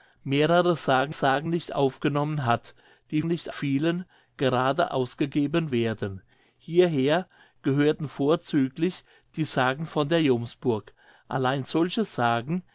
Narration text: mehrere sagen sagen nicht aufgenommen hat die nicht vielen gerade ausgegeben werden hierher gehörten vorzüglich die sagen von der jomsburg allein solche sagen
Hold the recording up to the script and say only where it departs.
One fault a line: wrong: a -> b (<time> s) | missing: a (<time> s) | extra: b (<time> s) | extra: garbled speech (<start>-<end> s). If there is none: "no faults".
no faults